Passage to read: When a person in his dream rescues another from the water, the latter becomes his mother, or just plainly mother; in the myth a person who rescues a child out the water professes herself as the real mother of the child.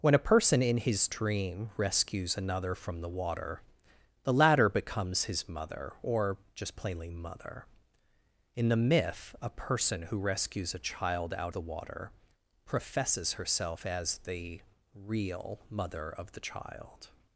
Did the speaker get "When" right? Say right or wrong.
right